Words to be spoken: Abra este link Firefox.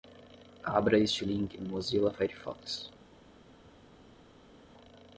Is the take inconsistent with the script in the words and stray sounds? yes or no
yes